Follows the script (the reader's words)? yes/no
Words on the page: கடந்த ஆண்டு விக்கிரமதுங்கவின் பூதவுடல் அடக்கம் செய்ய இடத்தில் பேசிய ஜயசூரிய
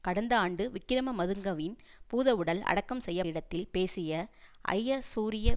yes